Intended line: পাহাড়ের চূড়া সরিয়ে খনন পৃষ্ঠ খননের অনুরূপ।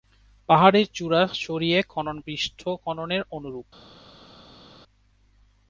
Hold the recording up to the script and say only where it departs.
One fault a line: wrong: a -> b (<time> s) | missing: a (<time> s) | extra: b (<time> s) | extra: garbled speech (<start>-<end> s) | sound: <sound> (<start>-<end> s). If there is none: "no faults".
no faults